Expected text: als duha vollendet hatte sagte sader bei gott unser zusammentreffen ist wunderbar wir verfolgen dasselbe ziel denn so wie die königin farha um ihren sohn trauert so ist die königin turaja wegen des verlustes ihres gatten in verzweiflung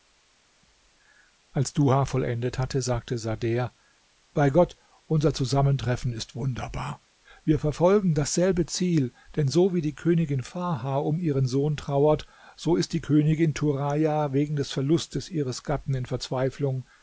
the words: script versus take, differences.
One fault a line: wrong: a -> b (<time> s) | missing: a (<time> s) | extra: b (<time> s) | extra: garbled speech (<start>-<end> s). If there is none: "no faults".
no faults